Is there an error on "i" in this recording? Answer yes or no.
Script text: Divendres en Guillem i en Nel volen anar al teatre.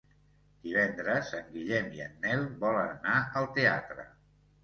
no